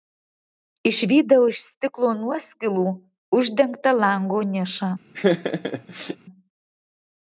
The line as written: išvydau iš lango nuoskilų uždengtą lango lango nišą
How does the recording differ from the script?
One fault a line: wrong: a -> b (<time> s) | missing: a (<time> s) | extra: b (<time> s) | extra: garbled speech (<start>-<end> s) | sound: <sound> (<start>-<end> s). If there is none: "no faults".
wrong: lango -> stiklo (1.7 s)
missing: lango (4.4 s)
sound: laugh (5.1-6.2 s)